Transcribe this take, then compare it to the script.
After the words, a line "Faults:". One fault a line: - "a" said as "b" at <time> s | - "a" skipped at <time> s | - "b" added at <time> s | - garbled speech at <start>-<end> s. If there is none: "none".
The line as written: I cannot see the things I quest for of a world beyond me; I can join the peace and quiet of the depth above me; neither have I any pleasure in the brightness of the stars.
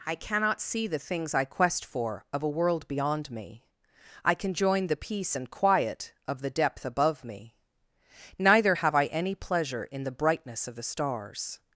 I cannot see the things I quest for of a world beyond me; I can join the peace and quiet of the depth above me; neither have I any pleasure in the brightness of the stars.
Faults:
none